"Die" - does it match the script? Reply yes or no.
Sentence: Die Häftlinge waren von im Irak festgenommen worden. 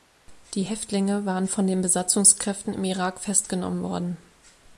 yes